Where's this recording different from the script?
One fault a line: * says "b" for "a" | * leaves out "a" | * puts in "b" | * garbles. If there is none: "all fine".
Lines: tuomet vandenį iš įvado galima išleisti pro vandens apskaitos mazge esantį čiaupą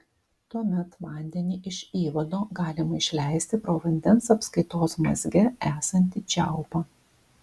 all fine